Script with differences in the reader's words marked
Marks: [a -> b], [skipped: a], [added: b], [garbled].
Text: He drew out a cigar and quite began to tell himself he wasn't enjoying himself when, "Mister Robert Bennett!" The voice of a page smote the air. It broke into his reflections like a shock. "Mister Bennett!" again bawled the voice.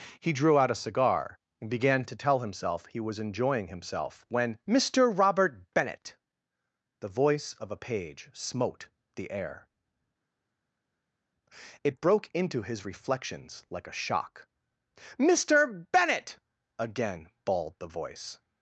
He drew out a cigar and [skipped: quite] began to tell himself he [wasn't -> was] enjoying himself when, "Mister Robert Bennett!" The voice of a page smote the air. It broke into his reflections like a shock. "Mister Bennett!" again bawled the voice.